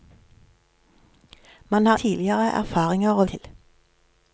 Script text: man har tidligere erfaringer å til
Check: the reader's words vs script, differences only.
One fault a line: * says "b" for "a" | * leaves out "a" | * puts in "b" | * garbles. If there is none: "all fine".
all fine